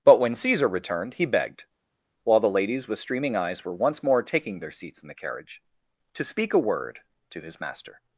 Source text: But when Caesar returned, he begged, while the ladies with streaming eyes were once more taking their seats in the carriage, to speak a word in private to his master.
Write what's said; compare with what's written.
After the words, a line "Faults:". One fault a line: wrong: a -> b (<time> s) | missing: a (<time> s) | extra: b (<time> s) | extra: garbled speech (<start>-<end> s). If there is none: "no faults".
But when Caesar returned, he begged, while the ladies with streaming eyes were once more taking their seats in the carriage, to speak a word to his master.
Faults:
missing: in private (7.0 s)